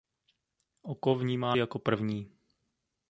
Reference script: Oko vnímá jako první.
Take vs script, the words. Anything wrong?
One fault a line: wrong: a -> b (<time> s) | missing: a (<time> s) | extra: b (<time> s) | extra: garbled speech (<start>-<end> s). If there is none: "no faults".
no faults